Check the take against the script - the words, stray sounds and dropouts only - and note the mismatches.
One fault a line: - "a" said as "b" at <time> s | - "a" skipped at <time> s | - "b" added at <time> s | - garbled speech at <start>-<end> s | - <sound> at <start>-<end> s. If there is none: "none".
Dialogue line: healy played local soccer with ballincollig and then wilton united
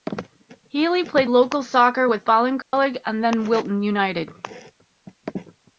- dropout at 2.6-2.7 s